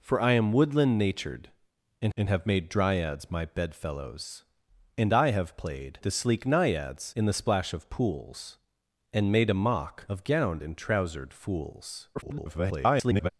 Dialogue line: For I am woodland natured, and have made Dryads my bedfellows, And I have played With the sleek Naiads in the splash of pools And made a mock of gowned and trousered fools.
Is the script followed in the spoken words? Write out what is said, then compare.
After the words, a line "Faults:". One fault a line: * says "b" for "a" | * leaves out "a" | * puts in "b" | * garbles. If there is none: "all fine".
For I am woodland natured, and and have made Dryads my bedfellows, And I have played The sleek Naiads in the splash of pools And made a mock of gowned and trousered fools. [garbled]
Faults:
* puts in "and"
* leaves out "With"
* garbles